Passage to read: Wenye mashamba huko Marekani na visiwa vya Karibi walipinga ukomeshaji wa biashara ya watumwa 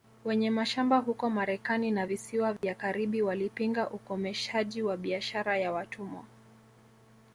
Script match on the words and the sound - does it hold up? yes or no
no